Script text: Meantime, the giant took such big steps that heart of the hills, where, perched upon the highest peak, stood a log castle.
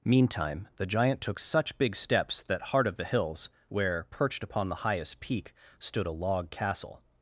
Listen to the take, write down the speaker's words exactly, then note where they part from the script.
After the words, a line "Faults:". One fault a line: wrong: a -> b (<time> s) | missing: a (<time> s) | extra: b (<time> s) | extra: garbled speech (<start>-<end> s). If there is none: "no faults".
Meantime, the giant took such big steps that heart of the hills, where, perched upon the highest peak, stood a log castle.
Faults:
no faults